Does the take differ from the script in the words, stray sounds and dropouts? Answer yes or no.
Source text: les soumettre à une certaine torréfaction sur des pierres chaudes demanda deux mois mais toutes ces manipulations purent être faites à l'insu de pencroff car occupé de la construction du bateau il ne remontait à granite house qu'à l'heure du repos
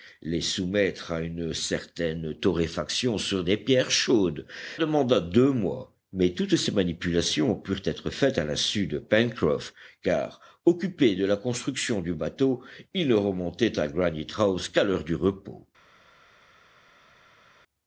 no